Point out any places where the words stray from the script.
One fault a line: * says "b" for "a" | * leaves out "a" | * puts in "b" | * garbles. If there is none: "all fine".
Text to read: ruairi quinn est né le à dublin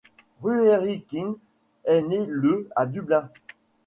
all fine